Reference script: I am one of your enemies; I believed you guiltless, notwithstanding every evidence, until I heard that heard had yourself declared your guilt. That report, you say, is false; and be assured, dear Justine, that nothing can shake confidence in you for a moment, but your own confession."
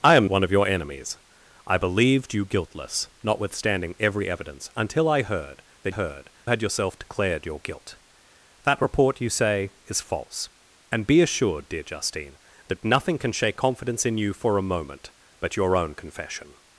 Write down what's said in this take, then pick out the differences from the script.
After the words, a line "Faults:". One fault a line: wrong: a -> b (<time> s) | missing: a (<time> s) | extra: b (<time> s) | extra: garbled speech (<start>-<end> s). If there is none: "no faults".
I am one of your enemies; I believed you guiltless, notwithstanding every evidence, until I heard that heard had yourself declared your guilt. That report, you say, is false; and be assured, dear Justine, that nothing can shake confidence in you for a moment, but your own confession."
Faults:
no faults